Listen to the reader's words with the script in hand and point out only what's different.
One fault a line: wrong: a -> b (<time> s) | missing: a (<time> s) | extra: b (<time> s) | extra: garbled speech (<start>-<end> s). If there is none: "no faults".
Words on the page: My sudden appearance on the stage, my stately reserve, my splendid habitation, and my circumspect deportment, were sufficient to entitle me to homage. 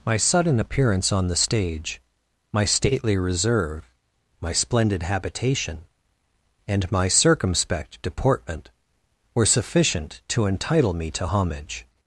no faults